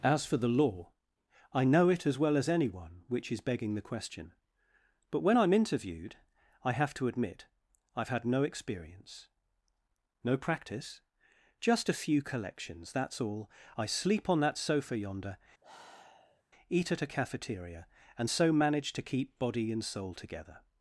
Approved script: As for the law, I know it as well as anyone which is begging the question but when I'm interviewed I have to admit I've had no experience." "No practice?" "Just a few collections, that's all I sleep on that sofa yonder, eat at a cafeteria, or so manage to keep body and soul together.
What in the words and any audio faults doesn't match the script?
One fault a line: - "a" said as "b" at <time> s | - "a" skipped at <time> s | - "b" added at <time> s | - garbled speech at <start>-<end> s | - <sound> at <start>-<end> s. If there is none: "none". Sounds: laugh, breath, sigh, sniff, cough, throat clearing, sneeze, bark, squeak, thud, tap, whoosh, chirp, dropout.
- sigh at 15.6-16.4 s
- "or" said as "and" at 18.2 s